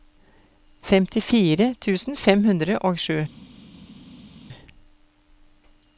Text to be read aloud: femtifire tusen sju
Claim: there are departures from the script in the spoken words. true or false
true